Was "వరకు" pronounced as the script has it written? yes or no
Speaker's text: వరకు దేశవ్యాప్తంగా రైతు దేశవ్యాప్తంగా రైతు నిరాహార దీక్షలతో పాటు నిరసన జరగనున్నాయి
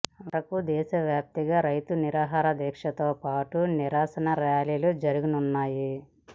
yes